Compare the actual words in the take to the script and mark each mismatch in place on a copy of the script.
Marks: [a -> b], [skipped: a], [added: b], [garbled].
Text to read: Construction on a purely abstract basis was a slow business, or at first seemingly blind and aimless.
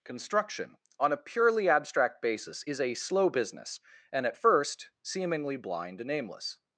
Construction on a purely abstract basis [was -> is] a slow business, [or -> and] at first seemingly blind and aimless.